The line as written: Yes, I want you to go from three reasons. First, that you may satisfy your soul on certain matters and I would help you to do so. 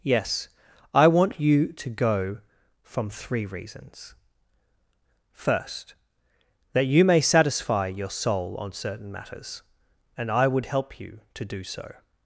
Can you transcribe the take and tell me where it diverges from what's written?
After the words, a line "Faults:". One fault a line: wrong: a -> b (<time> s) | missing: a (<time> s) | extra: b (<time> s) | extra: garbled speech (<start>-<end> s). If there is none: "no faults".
Yes, I want you to go from three reasons. First, that you may satisfy your soul on certain matters and I would help you to do so.
Faults:
no faults